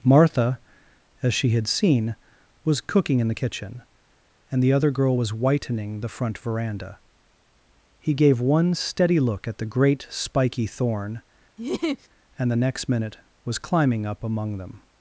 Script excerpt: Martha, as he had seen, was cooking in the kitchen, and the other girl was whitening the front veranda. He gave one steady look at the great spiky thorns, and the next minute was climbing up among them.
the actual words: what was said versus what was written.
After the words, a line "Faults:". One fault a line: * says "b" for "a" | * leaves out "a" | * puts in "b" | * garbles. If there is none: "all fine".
Martha, as she had seen, was cooking in the kitchen, and the other girl was whitening the front veranda. He gave one steady look at the great spiky thorn, and the next minute was climbing up among them.
Faults:
* says "she" for "he"
* says "thorn" for "thorns"